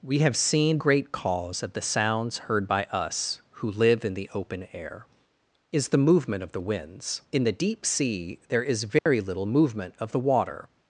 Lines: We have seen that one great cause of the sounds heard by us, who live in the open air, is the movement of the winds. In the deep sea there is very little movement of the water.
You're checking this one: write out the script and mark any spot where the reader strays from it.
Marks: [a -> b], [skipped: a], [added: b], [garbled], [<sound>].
We have seen [skipped: that one] great cause of the sounds heard by us, who live in the open air, is the movement of the winds. In the deep sea there is very [dropout] little movement of the water.